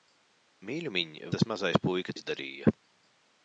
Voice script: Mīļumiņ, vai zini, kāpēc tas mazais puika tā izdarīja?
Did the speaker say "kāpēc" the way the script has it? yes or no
no